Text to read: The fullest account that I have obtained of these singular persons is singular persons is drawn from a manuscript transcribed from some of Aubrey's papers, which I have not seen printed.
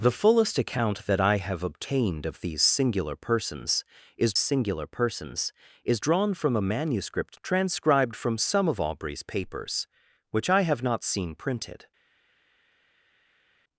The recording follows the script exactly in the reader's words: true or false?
true